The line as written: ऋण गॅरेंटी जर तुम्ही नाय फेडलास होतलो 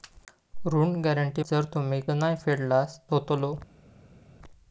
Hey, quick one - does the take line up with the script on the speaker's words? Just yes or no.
yes